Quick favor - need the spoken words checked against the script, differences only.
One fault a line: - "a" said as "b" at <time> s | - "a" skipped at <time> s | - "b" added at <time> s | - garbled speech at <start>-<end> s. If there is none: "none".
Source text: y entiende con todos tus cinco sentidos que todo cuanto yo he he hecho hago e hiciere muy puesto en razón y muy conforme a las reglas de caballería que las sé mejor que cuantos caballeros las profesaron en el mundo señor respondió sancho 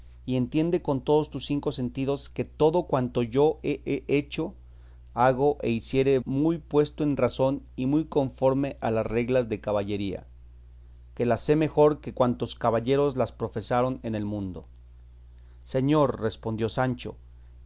none